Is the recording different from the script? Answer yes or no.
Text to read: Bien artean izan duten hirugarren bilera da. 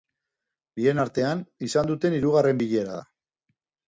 no